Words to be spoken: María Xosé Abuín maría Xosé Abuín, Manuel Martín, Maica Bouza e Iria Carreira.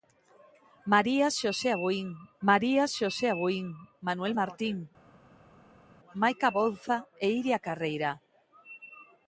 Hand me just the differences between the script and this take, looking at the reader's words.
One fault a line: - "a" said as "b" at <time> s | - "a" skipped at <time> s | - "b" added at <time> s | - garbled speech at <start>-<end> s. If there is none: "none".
none